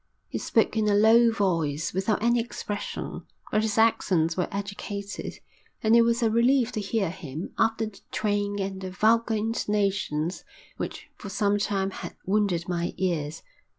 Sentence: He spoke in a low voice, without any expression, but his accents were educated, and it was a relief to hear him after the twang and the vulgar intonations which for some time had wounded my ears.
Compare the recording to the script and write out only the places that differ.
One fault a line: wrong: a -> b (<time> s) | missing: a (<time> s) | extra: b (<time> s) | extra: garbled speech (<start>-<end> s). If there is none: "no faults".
no faults